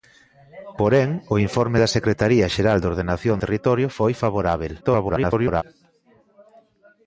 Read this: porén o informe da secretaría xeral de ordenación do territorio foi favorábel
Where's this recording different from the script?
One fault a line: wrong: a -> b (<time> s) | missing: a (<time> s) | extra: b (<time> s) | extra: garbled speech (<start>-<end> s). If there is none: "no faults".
missing: do (3.4 s)
extra: garbled speech (4.8-5.6 s)